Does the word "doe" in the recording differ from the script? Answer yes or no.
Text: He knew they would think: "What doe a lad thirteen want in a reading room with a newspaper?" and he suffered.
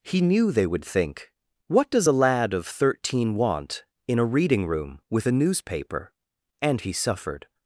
yes